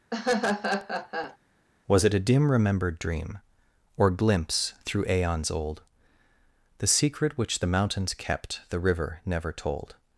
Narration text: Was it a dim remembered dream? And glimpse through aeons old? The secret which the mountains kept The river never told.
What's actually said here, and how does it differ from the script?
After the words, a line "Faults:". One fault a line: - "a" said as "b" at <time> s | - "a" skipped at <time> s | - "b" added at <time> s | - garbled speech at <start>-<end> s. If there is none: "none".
Was it a dim remembered dream? Or glimpse through aeons old? The secret which the mountains kept The river never told.
Faults:
- "And" said as "Or" at 4.0 s